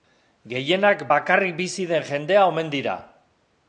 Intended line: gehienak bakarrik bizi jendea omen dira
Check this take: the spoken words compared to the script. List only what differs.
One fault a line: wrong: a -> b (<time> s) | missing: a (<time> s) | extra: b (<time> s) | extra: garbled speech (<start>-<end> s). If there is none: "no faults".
extra: den (1.9 s)